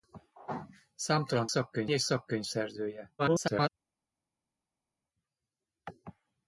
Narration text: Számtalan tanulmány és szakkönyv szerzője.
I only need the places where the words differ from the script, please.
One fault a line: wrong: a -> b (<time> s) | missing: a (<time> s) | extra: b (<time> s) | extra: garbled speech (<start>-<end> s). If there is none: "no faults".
wrong: tanulmány -> szakkönyv (1.5 s)
extra: garbled speech (3.2-3.7 s)